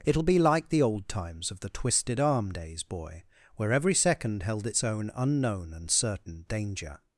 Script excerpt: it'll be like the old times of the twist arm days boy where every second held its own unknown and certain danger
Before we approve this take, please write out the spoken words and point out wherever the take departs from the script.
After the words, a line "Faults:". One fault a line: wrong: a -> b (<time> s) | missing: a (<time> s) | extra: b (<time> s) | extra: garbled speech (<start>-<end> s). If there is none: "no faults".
it'll be like the old times of the twisted arm days boy where every second held its own unknown and certain danger
Faults:
wrong: twist -> twisted (1.7 s)